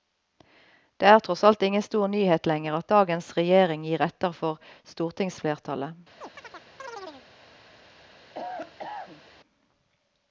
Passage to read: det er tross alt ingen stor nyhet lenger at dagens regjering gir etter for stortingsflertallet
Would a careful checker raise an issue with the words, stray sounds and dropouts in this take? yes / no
yes